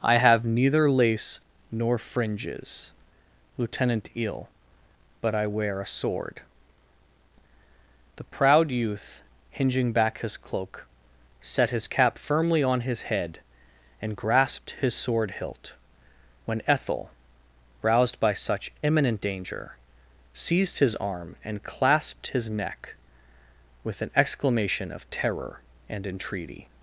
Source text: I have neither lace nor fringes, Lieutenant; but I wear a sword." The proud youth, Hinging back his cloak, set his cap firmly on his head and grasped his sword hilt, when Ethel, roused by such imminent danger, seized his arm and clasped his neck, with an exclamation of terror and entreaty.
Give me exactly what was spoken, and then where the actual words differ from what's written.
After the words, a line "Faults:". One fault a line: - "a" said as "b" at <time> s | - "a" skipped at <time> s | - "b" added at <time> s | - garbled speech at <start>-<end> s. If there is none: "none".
I have neither lace nor fringes, Lieutenant; eel but I wear a sword." The proud youth, Hinging back his cloak, set his cap firmly on his head and grasped his sword hilt, when Ethel, roused by such imminent danger, seized his arm and clasped his neck, with an exclamation of terror and entreaty.
Faults:
- "eel" added at 4.1 s